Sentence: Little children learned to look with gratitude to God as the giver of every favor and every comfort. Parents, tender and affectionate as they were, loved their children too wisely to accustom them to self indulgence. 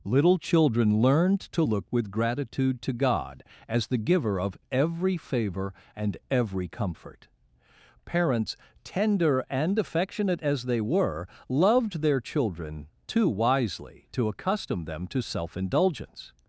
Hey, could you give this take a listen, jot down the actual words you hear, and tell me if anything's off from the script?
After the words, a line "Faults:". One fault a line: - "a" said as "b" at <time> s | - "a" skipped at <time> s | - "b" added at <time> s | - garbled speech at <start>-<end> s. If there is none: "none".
Little children learned to look with gratitude to God as the giver of every favor and every comfort. Parents, tender and affectionate as they were, loved their children too wisely to accustom them to self indulgence.
Faults:
none